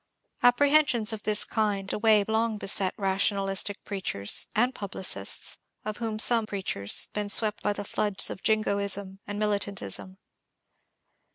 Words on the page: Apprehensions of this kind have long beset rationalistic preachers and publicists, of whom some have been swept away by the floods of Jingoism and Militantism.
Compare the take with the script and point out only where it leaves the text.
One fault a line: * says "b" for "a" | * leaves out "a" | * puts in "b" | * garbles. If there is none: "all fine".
* says "away" for "have"
* says "preachers" for "have"
* leaves out "away"